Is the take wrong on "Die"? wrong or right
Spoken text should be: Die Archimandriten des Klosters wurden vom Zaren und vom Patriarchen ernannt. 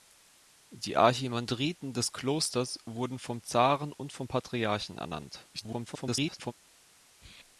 right